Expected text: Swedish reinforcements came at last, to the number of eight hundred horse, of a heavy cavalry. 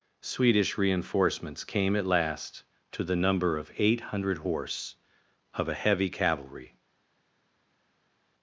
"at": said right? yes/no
yes